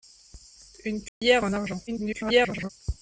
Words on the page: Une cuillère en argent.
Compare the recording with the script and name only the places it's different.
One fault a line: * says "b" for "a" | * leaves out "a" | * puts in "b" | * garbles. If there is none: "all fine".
* garbles